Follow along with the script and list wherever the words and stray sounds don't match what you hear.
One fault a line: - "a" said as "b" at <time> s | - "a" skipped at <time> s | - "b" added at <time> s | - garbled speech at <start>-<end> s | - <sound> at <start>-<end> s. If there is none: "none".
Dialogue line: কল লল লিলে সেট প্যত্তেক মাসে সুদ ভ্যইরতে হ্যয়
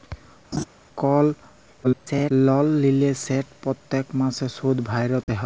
- laugh at 0.5-0.6 s
- garbled speech at 1.8-2.3 s
- dropout at 5.2-5.3 s